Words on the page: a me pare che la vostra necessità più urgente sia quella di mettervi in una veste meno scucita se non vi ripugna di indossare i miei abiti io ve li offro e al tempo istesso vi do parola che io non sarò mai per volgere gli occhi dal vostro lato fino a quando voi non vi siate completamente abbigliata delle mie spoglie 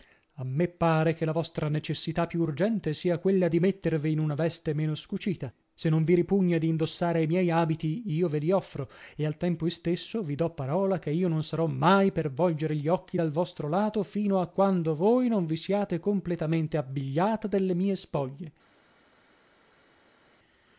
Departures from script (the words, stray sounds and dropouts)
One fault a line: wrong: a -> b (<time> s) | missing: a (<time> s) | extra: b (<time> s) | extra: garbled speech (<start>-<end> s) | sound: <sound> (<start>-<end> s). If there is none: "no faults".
no faults